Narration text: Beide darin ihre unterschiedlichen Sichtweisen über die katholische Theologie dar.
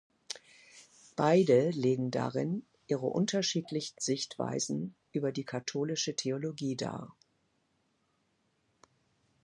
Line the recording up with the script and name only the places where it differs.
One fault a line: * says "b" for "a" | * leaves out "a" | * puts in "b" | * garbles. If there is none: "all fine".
* puts in "legen"